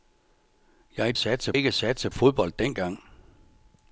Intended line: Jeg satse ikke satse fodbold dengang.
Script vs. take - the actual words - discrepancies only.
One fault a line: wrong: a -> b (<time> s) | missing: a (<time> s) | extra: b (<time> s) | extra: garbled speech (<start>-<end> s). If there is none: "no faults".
no faults